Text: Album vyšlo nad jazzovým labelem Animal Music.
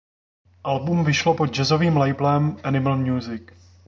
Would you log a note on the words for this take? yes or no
yes